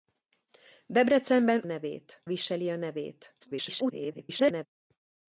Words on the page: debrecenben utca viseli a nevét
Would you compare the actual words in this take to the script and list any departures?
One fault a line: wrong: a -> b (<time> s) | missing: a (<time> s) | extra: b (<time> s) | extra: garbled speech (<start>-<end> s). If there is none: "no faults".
wrong: utca -> nevét (1.6 s)
extra: garbled speech (3.4-4.7 s)